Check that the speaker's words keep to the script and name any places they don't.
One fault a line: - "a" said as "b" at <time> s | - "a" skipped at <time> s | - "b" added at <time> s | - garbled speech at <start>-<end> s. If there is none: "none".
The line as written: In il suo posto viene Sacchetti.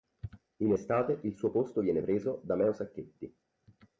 - "estate" added at 0.7 s
- "preso da Meo" added at 2.0 s